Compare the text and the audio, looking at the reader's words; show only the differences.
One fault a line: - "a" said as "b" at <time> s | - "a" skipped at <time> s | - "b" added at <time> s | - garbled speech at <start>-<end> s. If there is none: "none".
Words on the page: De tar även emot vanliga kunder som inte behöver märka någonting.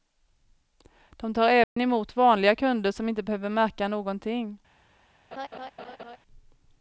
none